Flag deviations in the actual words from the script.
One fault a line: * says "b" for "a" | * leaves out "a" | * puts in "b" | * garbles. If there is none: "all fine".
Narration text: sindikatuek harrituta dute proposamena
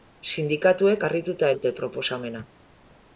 all fine